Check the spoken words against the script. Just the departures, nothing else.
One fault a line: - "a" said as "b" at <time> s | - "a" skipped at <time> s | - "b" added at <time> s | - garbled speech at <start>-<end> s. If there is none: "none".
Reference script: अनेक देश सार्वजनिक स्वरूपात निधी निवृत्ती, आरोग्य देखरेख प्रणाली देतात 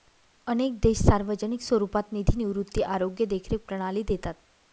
none